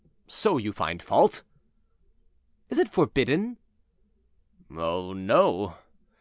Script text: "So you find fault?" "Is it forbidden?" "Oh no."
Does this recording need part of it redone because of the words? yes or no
no